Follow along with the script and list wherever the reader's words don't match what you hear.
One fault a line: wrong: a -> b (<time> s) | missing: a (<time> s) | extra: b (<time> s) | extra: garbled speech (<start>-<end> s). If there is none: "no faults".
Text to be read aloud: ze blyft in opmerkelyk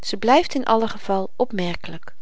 extra: allen geval (0.7 s)